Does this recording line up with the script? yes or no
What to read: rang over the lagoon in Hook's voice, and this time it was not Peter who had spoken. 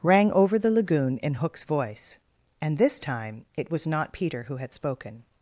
yes